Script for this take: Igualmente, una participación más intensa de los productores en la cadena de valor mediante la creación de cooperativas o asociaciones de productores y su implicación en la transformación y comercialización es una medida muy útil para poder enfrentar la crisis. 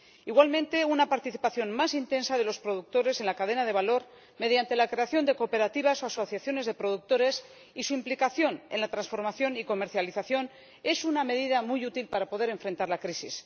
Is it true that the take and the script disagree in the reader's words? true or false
false